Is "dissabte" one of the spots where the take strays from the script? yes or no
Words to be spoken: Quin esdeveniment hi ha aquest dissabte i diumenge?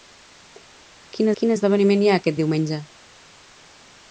yes